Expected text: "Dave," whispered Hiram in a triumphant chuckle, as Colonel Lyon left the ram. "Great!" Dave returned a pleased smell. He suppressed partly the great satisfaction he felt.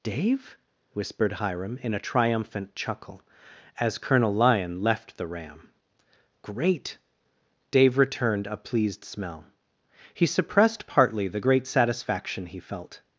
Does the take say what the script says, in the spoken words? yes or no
yes